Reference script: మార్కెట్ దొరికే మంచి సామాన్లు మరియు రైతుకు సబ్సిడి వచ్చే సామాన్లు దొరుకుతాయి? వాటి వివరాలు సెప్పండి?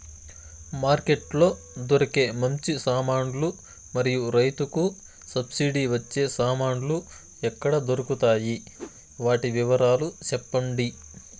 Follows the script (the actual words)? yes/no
no